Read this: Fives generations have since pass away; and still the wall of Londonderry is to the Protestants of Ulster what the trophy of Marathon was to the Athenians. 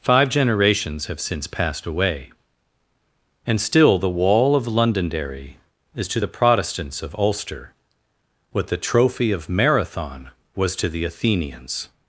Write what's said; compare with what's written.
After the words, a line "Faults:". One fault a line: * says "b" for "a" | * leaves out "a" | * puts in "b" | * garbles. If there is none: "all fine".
Five generations have since passed away; and still the wall of Londonderry is to the Protestants of Ulster what the trophy of Marathon was to the Athenians.
Faults:
* says "Five" for "Fives"
* says "passed" for "pass"